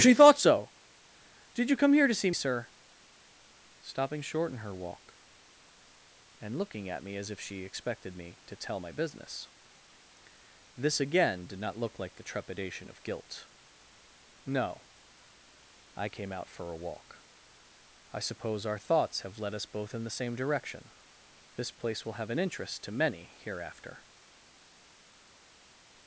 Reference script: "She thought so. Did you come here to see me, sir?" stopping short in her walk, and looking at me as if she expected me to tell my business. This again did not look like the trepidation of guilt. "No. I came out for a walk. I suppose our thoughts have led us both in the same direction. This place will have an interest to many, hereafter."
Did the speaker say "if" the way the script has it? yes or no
yes